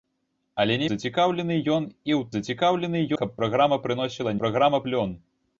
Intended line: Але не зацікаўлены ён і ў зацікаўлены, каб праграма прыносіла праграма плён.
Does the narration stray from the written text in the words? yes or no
no